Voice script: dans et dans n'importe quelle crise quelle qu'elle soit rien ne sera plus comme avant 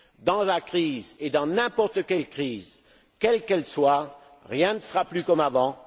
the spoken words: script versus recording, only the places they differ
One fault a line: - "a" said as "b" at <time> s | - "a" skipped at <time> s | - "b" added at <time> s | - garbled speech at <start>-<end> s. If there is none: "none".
- "la crise" added at 0.4 s